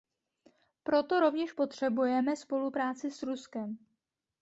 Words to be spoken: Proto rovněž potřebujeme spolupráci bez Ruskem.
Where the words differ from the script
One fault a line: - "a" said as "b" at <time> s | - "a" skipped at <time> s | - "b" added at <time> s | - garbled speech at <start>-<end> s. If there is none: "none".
- "bez" said as "s" at 3.1 s